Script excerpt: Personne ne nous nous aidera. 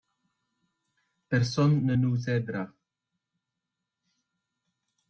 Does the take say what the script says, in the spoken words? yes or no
no